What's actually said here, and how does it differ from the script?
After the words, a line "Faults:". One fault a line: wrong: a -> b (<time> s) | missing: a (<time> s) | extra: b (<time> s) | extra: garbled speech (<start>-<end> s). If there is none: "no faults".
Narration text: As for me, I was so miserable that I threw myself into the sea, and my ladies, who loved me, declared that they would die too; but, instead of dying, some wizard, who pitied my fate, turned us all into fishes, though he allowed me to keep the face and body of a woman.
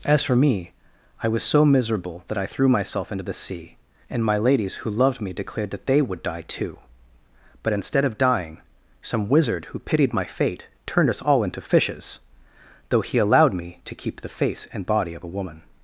As for me, I was so miserable that I threw myself into the sea, and my ladies, who loved me, declared that they would die too; but, instead of dying, some wizard, who pitied my fate, turned us all into fishes, though he allowed me to keep the face and body of a woman.
Faults:
no faults